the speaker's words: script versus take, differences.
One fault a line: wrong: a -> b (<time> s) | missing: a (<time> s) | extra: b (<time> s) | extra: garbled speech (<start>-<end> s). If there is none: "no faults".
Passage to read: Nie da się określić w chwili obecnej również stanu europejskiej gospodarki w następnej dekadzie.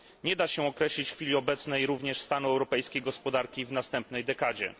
no faults